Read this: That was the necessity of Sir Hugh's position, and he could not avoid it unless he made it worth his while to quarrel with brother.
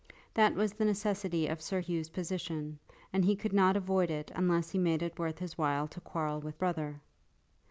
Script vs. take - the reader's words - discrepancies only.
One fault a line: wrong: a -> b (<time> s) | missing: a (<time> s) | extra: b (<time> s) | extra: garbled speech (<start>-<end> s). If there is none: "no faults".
no faults